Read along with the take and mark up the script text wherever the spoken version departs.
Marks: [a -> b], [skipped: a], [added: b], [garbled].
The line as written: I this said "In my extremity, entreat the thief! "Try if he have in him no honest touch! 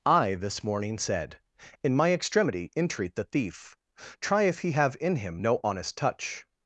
I this [added: morning] said "In my extremity, entreat the thief! "Try if he have in him no honest touch!